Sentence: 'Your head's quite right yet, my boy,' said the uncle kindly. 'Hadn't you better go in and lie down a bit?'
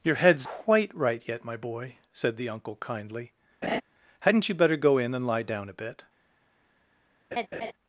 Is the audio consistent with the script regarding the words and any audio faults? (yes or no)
no